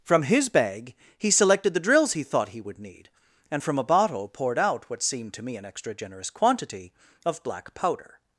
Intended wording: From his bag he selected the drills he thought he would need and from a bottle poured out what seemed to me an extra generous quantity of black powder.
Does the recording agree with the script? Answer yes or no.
yes